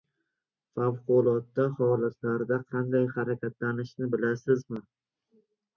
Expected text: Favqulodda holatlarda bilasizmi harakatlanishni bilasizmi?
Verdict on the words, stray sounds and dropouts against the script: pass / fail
fail